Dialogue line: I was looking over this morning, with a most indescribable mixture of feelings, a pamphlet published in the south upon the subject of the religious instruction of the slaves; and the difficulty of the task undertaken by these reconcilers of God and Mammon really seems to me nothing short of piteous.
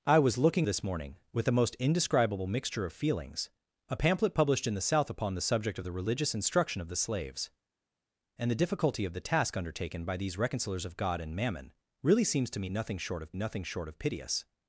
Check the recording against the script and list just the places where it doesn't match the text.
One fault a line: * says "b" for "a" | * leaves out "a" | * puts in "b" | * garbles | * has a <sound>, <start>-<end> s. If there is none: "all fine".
* leaves out "over"
* puts in "nothing short of"